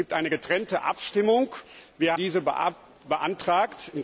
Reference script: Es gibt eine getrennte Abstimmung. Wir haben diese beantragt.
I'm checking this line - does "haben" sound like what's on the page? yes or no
no